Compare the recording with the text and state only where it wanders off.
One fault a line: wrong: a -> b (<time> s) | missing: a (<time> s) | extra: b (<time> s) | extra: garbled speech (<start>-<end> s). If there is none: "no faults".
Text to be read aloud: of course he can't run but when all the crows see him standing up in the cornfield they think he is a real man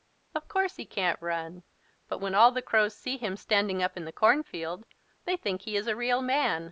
no faults